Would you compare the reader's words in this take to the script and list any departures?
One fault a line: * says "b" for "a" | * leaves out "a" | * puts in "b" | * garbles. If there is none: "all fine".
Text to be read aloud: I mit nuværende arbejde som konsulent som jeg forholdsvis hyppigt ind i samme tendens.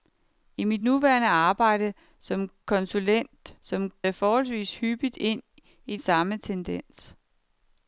all fine